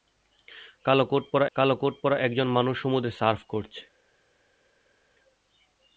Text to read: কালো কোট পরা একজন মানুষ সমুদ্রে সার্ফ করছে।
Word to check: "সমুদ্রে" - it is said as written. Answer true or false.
true